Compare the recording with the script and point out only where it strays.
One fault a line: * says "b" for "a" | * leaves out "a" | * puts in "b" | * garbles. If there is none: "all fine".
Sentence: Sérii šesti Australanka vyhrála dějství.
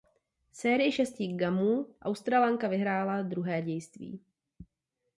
* puts in "gamů"
* puts in "druhé"